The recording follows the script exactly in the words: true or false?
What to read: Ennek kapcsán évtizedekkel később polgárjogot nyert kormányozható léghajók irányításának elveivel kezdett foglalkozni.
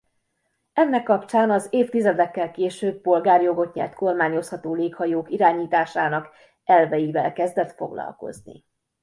false